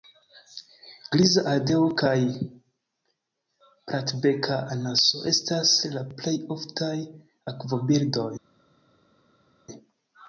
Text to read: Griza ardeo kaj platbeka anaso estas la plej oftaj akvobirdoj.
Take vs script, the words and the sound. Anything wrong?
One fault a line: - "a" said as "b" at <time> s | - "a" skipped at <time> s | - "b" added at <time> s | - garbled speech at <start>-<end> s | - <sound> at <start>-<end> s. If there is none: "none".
none